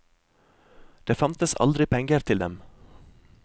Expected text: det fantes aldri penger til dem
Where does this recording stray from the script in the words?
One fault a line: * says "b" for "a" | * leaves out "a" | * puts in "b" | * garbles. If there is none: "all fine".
all fine